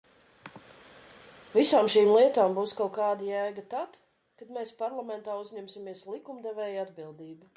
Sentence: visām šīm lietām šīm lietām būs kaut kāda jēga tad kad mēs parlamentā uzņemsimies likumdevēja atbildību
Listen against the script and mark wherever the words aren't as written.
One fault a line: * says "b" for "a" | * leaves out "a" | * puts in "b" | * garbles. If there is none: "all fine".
* leaves out "šīm lietām"